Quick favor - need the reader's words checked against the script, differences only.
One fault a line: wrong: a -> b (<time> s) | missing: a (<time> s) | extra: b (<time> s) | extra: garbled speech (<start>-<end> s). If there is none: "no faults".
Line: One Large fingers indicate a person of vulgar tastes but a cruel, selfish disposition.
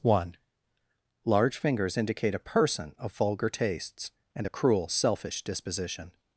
wrong: but -> and (4.3 s)